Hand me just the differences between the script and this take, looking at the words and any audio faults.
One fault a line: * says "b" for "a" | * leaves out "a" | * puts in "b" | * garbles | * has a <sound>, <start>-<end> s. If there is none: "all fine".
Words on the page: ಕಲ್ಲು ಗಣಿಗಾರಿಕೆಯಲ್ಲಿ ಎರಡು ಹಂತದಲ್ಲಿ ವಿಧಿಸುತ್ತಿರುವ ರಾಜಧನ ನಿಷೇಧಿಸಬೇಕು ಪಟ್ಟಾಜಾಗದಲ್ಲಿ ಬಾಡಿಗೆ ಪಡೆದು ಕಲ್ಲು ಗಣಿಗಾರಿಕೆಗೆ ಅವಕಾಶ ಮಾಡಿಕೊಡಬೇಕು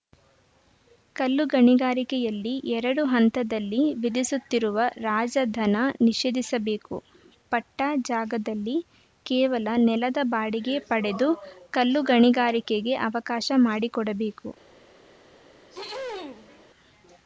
* puts in "ಕೇವಲ ನೆಲದ"
* has a throat clearing, 15.7-16.7 s